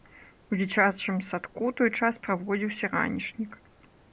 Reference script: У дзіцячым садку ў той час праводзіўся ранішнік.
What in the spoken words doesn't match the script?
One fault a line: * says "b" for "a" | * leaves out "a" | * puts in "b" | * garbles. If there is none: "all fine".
all fine